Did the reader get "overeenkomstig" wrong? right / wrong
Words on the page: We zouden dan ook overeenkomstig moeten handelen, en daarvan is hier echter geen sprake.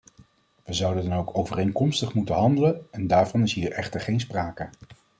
right